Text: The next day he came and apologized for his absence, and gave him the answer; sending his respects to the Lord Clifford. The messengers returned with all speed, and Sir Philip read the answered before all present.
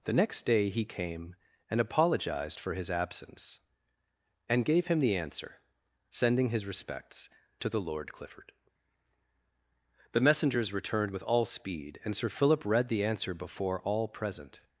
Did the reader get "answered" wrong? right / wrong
wrong